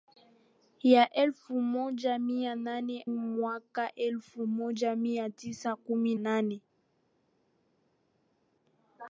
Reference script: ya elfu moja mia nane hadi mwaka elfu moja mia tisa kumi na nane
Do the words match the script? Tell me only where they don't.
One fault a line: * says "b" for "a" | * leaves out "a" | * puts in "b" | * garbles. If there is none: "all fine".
* leaves out "hadi"
* leaves out "na"